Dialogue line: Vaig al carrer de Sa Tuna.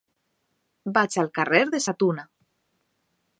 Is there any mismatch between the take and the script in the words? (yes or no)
no